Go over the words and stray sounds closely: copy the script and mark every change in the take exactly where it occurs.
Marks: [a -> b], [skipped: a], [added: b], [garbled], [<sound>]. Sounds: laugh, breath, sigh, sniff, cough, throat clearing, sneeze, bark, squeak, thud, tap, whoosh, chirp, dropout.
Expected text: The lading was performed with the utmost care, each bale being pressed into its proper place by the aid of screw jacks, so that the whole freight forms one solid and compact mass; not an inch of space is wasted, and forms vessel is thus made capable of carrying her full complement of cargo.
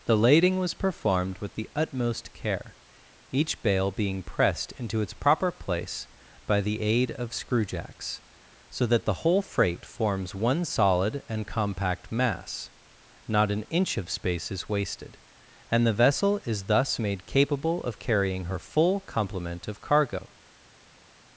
The lading was performed with the utmost care, each bale being pressed into its proper place by the aid of screw jacks, so that the whole freight forms one solid and compact mass; not an inch of space is wasted, and [forms -> the] vessel is thus made capable of carrying her full complement of cargo.